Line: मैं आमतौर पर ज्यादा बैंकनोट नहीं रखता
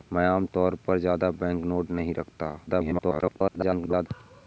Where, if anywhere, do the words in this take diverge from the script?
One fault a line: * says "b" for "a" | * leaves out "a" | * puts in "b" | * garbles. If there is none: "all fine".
* garbles